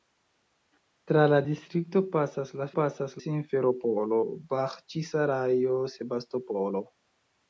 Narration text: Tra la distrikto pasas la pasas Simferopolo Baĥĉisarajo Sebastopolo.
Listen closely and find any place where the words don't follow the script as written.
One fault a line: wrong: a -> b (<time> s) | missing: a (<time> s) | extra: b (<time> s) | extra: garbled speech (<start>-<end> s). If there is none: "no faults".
no faults